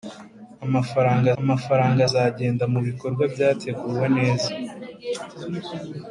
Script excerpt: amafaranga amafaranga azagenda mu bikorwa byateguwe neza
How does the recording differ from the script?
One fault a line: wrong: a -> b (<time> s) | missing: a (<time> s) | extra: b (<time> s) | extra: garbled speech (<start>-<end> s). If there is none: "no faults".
no faults